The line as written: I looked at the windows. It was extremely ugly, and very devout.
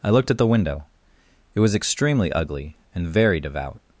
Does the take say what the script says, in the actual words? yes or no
no